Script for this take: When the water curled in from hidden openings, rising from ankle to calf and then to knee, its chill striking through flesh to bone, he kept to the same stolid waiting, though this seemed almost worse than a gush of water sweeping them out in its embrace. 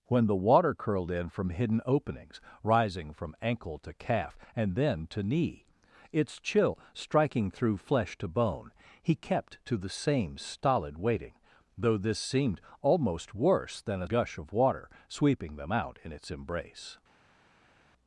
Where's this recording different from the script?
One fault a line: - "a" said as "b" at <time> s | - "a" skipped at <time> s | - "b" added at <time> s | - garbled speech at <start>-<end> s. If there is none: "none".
none